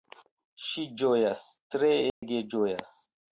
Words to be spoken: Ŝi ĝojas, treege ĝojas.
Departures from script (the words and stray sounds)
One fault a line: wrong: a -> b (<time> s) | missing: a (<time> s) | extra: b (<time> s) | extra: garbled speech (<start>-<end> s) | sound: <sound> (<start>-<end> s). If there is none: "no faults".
sound: dropout (2.1-2.2 s)